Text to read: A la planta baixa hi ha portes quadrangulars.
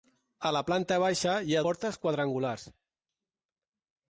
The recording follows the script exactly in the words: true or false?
true